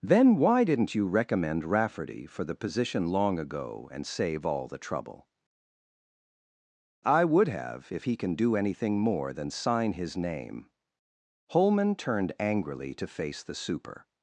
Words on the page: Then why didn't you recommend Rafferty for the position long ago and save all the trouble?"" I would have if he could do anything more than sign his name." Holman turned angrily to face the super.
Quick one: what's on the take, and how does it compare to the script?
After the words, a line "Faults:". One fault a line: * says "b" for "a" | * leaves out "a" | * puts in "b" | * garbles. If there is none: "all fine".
Then why didn't you recommend Rafferty for the position long ago and save all the trouble?"" I would have if he can do anything more than sign his name." Holman turned angrily to face the super.
Faults:
* says "can" for "could"